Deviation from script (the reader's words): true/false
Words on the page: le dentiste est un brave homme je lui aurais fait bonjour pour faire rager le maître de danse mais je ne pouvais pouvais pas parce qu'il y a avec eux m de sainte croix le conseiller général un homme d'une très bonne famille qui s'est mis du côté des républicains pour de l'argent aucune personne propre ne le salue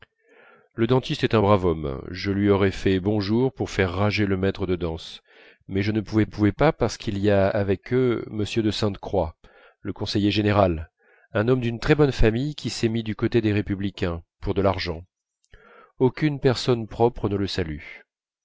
false